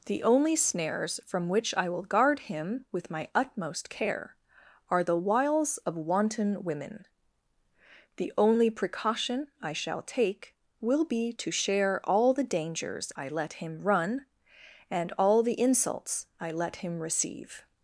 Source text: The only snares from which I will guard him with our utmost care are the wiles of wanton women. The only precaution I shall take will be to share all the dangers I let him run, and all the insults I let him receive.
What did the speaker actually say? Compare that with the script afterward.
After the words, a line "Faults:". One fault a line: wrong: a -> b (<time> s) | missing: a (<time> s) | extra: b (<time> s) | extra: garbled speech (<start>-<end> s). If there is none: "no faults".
The only snares from which I will guard him with my utmost care are the wiles of wanton women. The only precaution I shall take will be to share all the dangers I let him run, and all the insults I let him receive.
Faults:
wrong: our -> my (3.1 s)